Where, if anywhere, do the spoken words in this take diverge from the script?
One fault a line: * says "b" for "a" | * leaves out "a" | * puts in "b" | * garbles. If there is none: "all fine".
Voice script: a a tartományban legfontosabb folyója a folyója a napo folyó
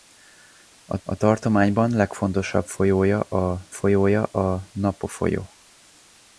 all fine